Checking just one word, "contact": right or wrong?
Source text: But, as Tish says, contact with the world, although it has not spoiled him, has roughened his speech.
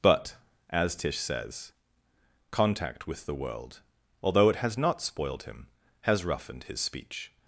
right